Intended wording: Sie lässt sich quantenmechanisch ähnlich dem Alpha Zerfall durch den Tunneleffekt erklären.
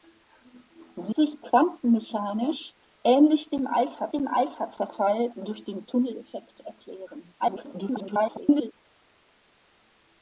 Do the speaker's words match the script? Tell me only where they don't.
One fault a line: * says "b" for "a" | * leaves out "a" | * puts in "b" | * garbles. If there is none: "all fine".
* leaves out "lässt"
* puts in "dem Alpha"
* garbles